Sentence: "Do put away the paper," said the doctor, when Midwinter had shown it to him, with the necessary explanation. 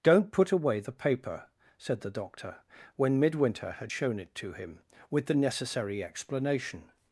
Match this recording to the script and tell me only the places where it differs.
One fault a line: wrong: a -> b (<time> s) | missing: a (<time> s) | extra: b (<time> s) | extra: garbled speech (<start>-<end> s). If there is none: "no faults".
wrong: Do -> Don't (0.0 s)